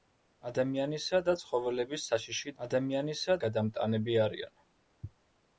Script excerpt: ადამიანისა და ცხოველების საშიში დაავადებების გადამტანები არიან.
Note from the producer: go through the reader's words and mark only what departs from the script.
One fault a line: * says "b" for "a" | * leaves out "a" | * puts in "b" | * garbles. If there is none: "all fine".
* says "ადამიანისა" for "დაავადებების"